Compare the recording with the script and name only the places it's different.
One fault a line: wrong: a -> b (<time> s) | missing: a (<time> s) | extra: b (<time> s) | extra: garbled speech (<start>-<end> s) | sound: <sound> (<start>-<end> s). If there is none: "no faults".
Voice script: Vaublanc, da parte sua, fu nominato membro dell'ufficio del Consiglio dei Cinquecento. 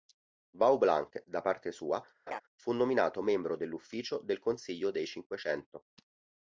sound: laugh (2.3-2.4 s)